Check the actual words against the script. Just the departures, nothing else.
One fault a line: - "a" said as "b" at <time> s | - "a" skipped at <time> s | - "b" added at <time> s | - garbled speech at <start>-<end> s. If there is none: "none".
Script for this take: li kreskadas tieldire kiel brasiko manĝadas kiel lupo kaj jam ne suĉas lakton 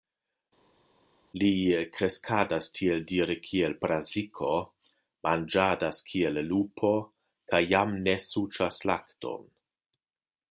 none